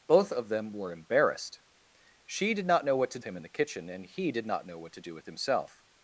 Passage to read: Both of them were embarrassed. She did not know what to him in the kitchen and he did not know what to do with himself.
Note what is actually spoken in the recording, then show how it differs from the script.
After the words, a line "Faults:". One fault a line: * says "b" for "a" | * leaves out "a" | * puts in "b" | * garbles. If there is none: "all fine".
Both of them were embarrassed. She did not know what to him in the kitchen and he did not know what to do with himself.
Faults:
all fine